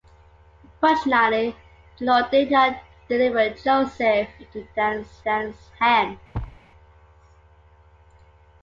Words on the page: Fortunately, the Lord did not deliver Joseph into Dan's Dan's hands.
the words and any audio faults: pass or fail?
fail